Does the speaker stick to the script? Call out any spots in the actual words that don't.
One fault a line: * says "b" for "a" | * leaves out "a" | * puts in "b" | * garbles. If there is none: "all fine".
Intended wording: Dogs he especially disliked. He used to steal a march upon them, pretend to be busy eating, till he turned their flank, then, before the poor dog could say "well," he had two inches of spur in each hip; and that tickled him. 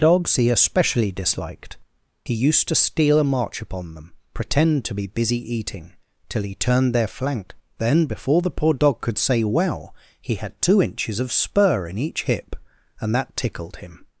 all fine